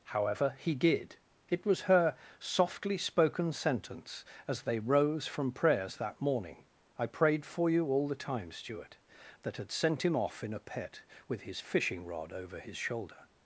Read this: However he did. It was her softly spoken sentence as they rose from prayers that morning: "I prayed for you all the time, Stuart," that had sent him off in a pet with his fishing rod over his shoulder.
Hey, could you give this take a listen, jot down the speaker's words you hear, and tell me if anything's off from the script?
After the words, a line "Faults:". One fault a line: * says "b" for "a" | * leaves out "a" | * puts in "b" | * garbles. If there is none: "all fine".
However he did. It was her softly spoken sentence as they rose from prayers that morning: "I prayed for you all the time, Stuart," that had sent him off in a pet with his fishing rod over his shoulder.
Faults:
all fine